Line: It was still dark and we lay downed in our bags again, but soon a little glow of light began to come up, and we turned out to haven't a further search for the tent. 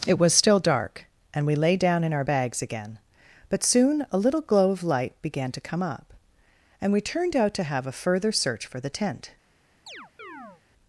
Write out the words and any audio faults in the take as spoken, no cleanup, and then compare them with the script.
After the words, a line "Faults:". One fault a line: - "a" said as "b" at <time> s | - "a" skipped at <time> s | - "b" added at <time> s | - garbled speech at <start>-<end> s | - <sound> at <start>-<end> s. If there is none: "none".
It was still dark and we lay down in our bags again, but soon a little glow of light began to come up, and we turned out to have a further search for the tent.
Faults:
- "downed" said as "down" at 1.8 s
- "haven't" said as "have" at 7.6 s
- chirp at 9.9-10.6 s